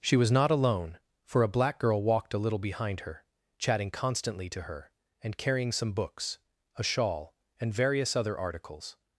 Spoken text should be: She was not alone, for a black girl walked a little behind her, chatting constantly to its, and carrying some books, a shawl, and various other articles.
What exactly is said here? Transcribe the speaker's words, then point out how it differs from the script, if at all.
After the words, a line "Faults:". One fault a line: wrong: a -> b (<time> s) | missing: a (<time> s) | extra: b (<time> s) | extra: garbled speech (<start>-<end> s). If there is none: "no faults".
She was not alone, for a black girl walked a little behind her, chatting constantly to her, and carrying some books, a shawl, and various other articles.
Faults:
wrong: its -> her (4.6 s)